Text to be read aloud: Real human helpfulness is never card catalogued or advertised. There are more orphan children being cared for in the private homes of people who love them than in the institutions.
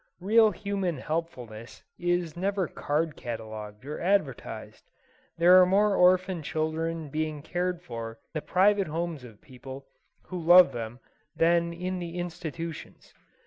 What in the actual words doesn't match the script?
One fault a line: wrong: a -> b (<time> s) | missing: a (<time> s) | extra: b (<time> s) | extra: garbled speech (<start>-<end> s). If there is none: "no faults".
missing: in (8.2 s)